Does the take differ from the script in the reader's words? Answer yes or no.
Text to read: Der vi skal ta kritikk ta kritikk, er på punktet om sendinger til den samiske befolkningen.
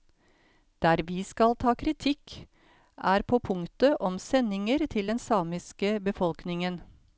yes